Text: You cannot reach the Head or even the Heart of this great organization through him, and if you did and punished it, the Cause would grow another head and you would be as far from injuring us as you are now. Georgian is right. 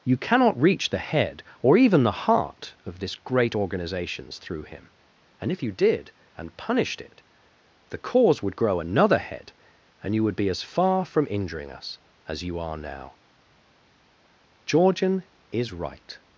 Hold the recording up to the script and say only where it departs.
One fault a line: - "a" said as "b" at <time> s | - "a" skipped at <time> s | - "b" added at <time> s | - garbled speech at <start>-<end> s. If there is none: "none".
- "organization" said as "organizations" at 3.5 s